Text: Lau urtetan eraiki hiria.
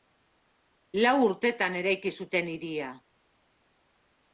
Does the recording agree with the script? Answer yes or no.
no